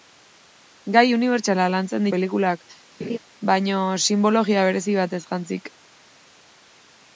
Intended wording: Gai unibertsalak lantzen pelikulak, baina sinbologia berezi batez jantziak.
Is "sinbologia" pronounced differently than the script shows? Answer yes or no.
no